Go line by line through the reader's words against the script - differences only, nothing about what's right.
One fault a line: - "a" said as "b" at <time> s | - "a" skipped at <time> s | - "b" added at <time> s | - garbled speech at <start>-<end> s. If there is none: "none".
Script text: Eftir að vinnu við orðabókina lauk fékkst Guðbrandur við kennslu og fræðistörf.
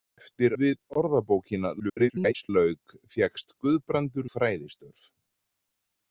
- "að vinnu" skipped at 0.5 s
- garbled speech at 1.8-2.5 s
- "við kennslu og" skipped at 4.3 s